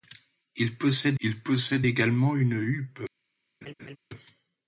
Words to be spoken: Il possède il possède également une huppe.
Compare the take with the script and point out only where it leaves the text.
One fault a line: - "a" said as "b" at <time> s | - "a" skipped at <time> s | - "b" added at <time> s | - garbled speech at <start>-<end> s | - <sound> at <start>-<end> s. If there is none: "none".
- laugh at 3.6-4.0 s